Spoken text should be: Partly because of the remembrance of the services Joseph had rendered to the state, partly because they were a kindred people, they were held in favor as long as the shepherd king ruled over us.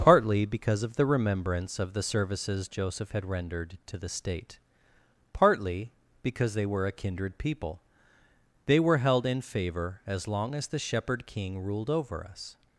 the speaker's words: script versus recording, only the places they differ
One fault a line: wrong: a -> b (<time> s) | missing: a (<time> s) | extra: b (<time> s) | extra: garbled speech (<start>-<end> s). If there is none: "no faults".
no faults